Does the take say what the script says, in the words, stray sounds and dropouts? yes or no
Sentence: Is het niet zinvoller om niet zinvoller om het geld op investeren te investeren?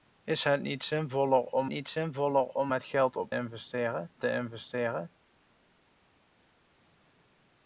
yes